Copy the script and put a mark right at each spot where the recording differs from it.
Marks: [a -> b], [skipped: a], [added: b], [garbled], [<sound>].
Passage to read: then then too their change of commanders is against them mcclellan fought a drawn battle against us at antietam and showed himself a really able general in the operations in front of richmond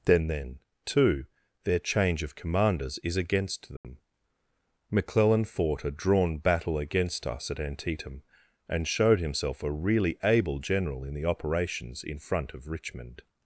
then then too their change of commanders is against them [dropout] mcclellan fought a drawn battle against us at antietam and showed himself a really able general in the operations in front of richmond